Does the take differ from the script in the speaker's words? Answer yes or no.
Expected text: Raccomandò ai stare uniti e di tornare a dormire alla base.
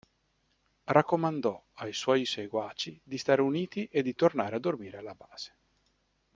yes